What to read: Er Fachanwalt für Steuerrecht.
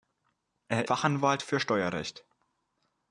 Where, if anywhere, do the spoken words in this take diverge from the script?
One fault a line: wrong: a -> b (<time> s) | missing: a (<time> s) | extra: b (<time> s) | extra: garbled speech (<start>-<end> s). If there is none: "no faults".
no faults